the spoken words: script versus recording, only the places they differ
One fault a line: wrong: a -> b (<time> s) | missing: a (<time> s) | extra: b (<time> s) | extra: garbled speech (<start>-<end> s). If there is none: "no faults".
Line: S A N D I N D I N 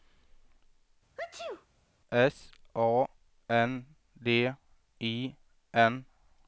missing: D I N (6.0 s)